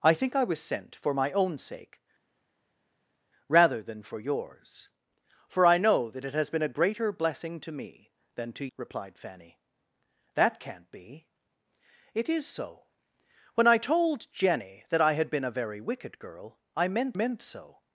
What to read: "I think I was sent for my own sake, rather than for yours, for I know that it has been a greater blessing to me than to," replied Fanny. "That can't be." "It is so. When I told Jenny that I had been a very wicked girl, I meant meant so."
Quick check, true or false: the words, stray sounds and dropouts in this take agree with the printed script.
true